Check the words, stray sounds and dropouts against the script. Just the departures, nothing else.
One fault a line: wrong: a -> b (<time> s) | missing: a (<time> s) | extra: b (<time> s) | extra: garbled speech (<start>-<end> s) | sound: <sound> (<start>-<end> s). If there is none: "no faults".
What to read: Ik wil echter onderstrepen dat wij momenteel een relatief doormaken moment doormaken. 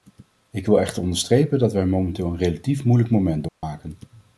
wrong: doormaken -> moeilijk (2.8 s)
sound: dropout (3.5-3.6 s)